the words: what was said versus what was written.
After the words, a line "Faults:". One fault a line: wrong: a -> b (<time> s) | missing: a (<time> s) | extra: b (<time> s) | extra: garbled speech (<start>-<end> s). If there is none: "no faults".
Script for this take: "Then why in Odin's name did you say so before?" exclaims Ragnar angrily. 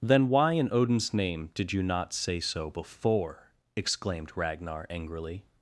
"Then why in Odin's name did you not say so before?" exclaimed Ragnar angrily.
Faults:
extra: not (1.8 s)
wrong: exclaims -> exclaimed (3.7 s)